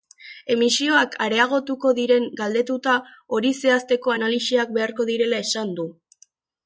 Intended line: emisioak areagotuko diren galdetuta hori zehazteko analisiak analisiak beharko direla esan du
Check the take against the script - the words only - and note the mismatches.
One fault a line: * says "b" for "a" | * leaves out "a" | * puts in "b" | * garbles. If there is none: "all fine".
* leaves out "analisiak"